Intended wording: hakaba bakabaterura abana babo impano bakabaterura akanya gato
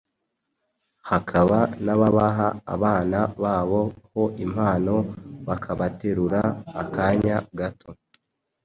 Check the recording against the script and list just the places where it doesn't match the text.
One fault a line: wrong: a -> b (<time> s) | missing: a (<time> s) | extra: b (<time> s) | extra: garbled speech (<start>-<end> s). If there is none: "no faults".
wrong: bakabaterura -> n'ababaha (1.9 s)
extra: ho (4.1 s)